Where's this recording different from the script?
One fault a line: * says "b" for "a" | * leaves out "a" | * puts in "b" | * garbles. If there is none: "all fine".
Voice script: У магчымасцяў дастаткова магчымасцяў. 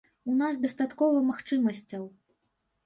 * says "нас" for "магчымасцяў"